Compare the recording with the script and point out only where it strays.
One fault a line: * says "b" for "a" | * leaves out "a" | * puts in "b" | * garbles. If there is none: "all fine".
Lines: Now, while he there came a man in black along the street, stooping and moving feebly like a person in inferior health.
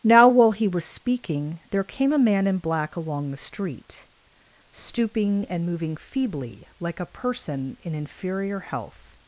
* puts in "was speaking"